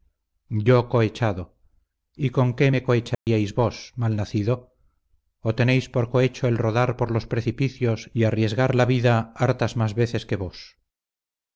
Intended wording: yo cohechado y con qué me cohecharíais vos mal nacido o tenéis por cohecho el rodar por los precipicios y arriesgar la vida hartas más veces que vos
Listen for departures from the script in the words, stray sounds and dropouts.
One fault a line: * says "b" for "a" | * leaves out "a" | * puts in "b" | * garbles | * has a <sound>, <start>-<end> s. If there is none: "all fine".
* has a dropout, 3.1-3.3 s